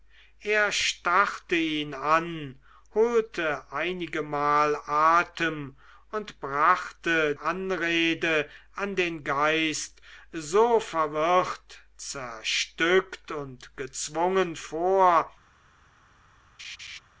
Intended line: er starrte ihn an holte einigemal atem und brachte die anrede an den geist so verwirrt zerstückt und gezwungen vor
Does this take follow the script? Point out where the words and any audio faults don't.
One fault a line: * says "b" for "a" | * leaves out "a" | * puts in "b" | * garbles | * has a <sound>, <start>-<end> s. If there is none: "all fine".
* leaves out "die"
* has a laugh, 16.6-17.0 s